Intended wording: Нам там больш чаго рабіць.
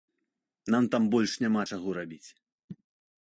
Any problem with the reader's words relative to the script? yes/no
yes